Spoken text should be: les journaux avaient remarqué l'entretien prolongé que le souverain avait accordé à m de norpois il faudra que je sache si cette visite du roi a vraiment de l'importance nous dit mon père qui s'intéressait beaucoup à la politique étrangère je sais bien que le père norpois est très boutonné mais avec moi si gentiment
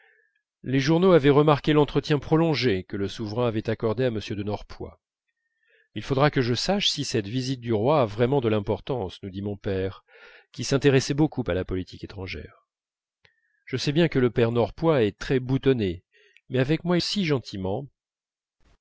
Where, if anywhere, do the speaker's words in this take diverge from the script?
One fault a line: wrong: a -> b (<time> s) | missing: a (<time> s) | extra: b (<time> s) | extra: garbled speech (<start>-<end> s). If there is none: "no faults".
no faults